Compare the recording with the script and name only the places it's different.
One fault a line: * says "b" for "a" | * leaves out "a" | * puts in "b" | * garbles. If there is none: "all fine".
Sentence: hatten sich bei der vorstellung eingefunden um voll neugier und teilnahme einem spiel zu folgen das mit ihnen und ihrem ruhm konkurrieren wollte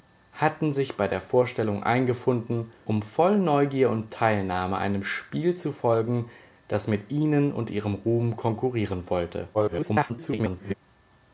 * garbles